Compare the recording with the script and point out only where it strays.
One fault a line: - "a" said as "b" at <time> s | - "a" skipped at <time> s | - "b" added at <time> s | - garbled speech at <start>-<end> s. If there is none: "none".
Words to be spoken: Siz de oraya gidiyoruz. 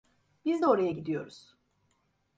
- "Siz" said as "Biz" at 0.5 s